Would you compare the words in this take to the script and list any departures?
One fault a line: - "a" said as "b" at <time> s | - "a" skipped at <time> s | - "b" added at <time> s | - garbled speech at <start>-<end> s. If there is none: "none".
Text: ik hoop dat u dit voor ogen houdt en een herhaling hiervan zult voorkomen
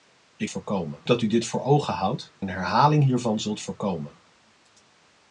- "hoop" said as "voorkomen" at 0.5 s
- "en" skipped at 2.3 s